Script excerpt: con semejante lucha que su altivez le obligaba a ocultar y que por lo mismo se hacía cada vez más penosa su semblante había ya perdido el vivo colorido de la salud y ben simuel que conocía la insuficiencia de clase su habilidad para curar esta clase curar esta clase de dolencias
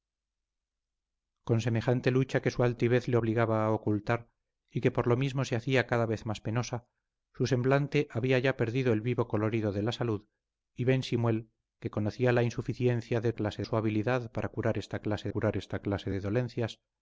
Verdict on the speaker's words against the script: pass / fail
pass